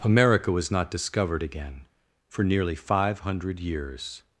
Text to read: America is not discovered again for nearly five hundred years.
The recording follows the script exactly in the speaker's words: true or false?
false